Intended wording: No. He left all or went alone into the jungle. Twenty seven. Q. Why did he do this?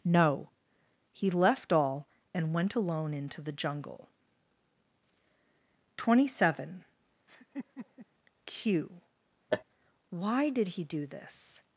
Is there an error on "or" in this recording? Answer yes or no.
yes